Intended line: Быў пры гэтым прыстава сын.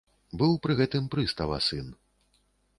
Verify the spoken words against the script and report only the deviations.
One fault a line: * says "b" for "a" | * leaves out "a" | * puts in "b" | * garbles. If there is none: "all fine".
all fine